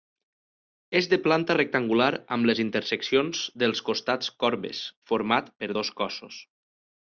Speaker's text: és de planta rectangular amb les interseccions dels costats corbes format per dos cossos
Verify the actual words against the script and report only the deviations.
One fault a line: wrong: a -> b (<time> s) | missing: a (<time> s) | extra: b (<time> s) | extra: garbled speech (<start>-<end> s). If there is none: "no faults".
no faults